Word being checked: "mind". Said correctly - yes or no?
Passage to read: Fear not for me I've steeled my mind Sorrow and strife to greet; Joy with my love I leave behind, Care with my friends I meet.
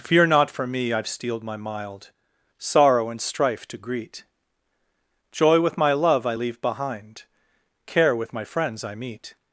no